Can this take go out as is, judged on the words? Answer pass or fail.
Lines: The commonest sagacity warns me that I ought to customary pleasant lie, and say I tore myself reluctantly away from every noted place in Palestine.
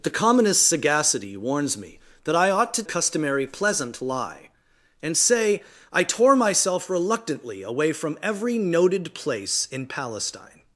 pass